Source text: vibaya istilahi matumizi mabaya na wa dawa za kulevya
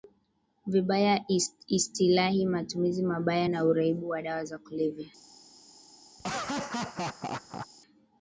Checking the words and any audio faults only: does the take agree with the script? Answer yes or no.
no